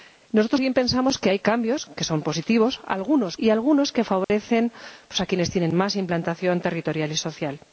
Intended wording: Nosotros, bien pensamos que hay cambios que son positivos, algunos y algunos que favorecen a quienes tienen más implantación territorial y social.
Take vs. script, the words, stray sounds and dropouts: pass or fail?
fail